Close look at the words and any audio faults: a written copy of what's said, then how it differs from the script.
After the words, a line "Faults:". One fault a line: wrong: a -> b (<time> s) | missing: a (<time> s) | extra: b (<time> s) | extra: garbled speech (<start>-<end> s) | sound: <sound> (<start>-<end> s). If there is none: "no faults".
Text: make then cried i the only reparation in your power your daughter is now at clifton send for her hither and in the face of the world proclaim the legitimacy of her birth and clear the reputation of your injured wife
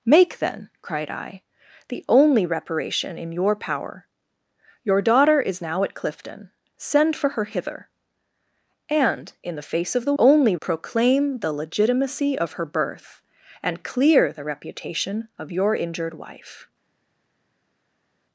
make then cried i the only reparation in your power your daughter is now at clifton send for her hither and in the face of the only proclaim the legitimacy of her birth and clear the reputation of your injured wife
Faults:
wrong: world -> only (10.2 s)